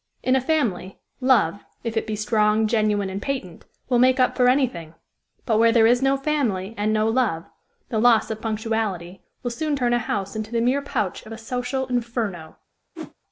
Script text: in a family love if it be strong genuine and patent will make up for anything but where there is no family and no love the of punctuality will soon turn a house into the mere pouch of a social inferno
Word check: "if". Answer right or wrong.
right